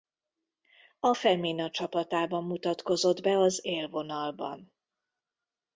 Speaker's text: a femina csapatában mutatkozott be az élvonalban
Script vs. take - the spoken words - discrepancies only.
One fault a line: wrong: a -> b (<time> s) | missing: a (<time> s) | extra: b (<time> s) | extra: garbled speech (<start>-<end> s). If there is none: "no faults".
no faults